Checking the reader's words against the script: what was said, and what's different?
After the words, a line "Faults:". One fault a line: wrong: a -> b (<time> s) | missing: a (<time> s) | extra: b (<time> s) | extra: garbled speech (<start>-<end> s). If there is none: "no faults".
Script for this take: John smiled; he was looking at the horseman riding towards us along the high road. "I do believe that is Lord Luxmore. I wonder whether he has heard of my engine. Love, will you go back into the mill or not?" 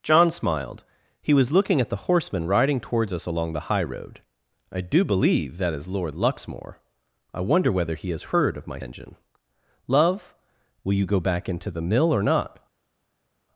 John smiled; he was looking at the horseman riding towards us along the high road. "I do believe that is Lord Luxmore. I wonder whether he has heard of my engine. Love, will you go back into the mill or not?"
Faults:
no faults